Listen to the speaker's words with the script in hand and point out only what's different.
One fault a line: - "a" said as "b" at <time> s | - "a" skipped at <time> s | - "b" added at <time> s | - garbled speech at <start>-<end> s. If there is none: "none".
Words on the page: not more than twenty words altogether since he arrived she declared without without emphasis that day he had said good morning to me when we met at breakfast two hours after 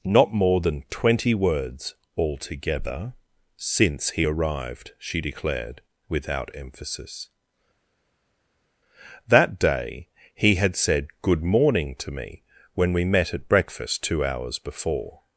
- "without" skipped at 6.6 s
- "after" said as "before" at 14.6 s